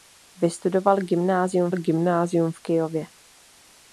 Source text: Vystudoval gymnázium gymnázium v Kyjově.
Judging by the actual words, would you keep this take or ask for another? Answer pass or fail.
pass